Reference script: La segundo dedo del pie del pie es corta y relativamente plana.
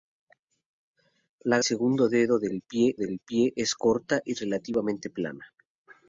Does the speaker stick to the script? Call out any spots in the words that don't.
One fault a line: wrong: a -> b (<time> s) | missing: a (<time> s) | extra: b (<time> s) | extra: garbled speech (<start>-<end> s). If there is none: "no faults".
no faults